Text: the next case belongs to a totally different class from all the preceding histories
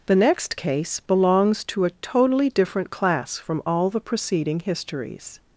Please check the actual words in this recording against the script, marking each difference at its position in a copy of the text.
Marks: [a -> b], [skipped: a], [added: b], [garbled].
the next case belongs to a totally different class from all the preceding histories